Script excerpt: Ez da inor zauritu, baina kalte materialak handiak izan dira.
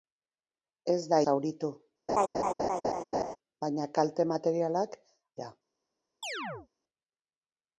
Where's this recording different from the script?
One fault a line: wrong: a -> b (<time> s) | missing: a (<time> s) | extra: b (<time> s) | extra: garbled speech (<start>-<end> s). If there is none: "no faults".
missing: inor (1.2 s)
missing: handiak izan (5.0 s)